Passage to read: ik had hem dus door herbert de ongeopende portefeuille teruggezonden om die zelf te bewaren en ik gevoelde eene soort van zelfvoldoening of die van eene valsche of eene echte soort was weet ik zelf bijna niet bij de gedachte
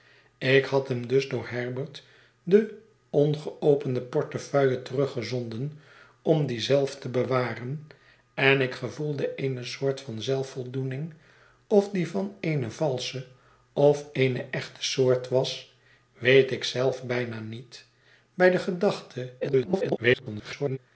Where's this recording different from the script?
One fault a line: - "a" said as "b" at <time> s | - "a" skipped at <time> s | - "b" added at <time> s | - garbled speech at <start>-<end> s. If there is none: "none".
- garbled speech at 19.4-20.8 s